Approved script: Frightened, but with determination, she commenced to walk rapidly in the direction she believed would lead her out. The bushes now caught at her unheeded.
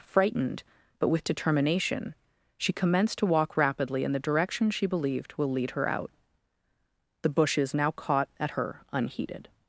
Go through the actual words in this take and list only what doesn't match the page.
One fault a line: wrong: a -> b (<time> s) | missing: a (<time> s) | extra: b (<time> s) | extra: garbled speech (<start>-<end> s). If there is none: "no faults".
wrong: would -> will (5.4 s)